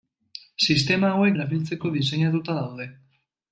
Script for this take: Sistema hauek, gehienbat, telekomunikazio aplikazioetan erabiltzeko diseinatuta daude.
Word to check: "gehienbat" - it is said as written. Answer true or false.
false